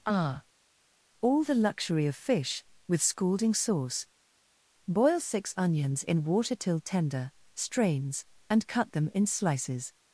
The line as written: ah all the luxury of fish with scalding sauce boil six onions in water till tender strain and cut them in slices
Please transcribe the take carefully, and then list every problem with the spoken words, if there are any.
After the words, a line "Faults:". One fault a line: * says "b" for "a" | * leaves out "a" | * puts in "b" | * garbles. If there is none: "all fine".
ah all the luxury of fish with scalding sauce boil six onions in water till tender strains and cut them in slices
Faults:
* says "strains" for "strain"